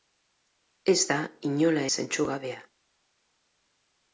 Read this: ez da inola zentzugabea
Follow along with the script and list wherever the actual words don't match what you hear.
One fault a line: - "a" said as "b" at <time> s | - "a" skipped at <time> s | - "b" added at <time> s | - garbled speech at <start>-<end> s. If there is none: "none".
none